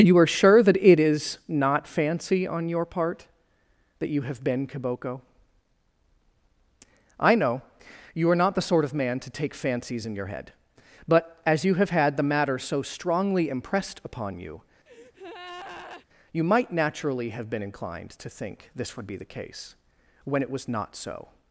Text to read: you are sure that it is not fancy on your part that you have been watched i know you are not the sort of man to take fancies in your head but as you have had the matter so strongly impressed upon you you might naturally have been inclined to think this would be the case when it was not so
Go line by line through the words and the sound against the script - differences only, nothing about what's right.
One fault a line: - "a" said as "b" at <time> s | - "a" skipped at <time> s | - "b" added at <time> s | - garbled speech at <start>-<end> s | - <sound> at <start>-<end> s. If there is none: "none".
- "watched" said as "kiboko" at 4.7 s
- breath at 14.9-16.1 s